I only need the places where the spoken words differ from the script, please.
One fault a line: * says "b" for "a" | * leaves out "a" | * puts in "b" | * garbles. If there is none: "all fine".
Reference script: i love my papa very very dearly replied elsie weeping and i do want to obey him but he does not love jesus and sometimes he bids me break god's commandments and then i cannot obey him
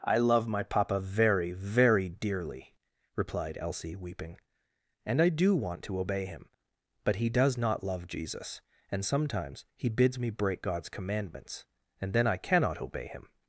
all fine